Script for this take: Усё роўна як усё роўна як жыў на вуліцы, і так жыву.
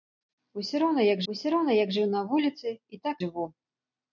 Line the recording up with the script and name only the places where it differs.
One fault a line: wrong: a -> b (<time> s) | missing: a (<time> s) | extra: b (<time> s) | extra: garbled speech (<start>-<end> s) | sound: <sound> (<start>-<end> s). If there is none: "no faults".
no faults